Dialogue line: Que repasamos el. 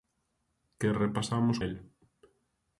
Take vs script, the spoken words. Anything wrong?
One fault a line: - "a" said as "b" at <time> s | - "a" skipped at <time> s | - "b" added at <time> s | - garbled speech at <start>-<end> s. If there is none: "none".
none